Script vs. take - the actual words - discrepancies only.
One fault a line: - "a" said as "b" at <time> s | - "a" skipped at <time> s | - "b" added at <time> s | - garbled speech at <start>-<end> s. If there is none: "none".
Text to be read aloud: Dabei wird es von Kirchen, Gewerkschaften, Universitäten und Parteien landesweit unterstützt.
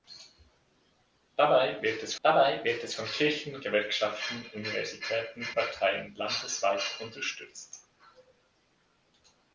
- "dabei wird es" added at 2.2 s
- "und" skipped at 5.5 s